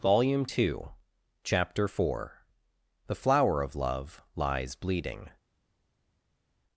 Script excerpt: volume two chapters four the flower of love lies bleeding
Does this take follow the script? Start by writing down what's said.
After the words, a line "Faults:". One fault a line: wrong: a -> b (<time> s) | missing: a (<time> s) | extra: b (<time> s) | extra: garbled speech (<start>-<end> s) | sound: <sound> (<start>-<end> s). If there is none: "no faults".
volume two chapter four the flower of love lies bleeding
Faults:
wrong: chapters -> chapter (1.4 s)